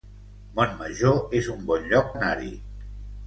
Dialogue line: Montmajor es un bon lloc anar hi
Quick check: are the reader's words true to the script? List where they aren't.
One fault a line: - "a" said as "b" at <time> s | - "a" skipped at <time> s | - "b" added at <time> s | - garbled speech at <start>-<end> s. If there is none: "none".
none